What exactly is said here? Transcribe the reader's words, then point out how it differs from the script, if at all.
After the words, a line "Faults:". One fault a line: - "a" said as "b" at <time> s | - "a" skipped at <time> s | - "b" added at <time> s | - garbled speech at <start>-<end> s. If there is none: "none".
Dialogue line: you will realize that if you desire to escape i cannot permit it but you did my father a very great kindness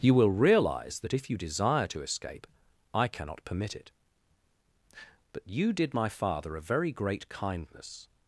you will realize that if you desire to escape i cannot permit it but you did my father a very great kindness
Faults:
none